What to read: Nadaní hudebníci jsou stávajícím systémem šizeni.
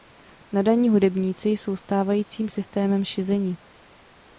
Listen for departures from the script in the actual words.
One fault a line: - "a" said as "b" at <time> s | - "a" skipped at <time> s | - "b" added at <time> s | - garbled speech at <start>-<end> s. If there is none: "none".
none